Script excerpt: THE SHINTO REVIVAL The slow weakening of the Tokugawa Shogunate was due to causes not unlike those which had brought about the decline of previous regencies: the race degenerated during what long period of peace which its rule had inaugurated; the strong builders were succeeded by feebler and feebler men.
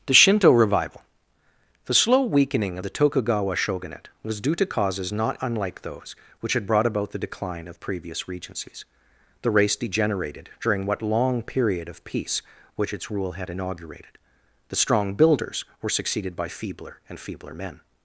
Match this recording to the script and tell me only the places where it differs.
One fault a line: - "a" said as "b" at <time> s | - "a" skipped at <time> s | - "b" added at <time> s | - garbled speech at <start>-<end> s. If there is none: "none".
none